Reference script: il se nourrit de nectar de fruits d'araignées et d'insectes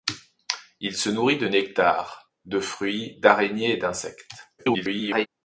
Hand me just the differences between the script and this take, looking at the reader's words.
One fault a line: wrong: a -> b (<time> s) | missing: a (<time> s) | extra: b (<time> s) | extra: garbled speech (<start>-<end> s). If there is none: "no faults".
extra: garbled speech (4.6-5.3 s)